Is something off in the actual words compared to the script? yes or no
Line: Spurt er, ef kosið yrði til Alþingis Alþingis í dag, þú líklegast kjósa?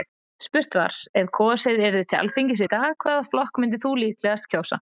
yes